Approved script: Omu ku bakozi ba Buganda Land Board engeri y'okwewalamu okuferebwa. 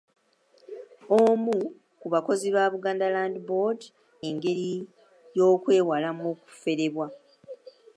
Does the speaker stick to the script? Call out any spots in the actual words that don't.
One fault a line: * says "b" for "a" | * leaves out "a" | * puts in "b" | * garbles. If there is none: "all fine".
all fine